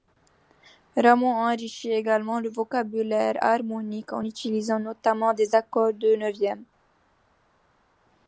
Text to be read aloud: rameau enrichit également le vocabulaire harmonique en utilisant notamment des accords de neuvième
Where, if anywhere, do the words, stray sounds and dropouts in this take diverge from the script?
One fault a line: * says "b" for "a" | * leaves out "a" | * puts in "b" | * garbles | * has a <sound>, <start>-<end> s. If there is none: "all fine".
all fine